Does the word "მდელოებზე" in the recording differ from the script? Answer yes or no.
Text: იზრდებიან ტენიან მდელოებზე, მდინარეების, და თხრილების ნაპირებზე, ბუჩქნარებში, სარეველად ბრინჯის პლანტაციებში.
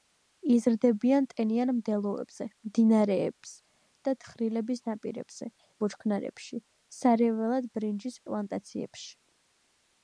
no